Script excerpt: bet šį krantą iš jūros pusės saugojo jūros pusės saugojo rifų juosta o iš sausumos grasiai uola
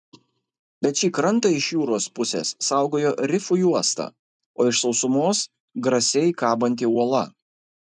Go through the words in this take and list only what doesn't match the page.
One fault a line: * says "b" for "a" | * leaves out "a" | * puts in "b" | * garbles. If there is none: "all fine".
* leaves out "jūros pusės saugojo"
* puts in "kabanti"